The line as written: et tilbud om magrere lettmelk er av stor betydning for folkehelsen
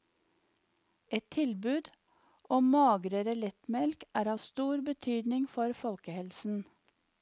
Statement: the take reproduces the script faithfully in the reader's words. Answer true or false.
true